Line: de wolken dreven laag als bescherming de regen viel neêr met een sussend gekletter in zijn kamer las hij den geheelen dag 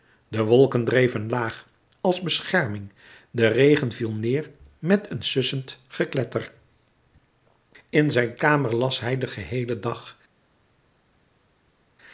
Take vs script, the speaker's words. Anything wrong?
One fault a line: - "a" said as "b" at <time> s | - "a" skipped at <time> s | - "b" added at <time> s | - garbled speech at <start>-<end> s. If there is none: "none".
none